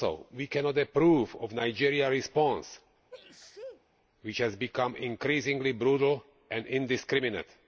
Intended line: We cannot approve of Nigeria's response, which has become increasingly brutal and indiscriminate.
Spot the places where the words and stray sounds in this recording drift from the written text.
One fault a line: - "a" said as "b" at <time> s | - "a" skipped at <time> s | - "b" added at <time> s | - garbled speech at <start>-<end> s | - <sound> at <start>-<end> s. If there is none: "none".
- sneeze at 3.1-3.8 s